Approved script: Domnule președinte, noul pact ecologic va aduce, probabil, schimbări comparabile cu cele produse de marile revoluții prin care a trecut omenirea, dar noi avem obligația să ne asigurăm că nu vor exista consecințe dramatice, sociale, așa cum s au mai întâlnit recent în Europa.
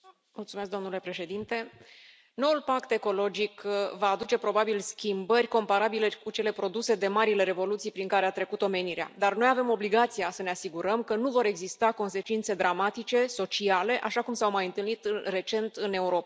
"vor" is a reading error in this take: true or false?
false